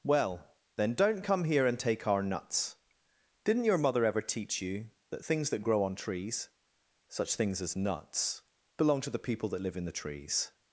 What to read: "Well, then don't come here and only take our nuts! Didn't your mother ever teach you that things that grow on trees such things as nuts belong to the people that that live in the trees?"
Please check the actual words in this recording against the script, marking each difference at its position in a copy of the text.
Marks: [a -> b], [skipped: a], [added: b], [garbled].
"Well, then don't come here and [skipped: only] take our nuts! Didn't your mother ever teach you that things that grow on trees such things as nuts belong to the people that [skipped: that] live in the trees?"